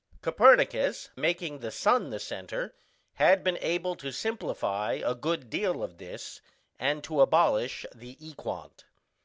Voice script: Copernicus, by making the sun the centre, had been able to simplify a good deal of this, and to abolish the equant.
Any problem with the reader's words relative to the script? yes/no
yes